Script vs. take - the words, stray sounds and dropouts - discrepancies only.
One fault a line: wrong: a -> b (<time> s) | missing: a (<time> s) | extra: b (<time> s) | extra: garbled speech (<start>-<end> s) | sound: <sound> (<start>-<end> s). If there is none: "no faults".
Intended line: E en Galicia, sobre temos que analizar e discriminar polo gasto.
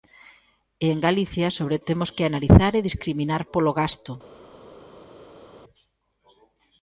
no faults